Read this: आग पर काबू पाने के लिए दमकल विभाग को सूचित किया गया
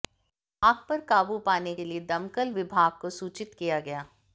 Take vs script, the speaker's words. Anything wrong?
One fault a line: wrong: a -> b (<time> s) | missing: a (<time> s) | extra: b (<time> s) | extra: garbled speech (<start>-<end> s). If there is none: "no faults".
no faults